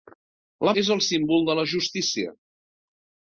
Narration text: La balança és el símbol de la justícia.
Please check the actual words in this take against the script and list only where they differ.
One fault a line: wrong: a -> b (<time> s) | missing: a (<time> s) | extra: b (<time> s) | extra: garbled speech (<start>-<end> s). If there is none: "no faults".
missing: balança (0.7 s)